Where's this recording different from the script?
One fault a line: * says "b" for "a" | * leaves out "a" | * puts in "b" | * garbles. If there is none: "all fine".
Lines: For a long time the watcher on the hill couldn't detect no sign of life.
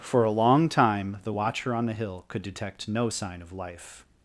* says "could" for "couldn't"